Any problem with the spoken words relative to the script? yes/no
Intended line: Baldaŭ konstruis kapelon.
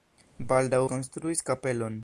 no